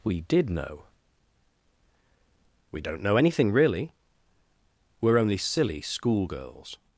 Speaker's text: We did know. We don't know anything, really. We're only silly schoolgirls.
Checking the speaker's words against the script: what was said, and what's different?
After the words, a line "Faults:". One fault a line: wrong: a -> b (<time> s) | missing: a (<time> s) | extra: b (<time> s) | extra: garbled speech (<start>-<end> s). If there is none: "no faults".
We did know. We don't know anything, really. We're only silly schoolgirls.
Faults:
no faults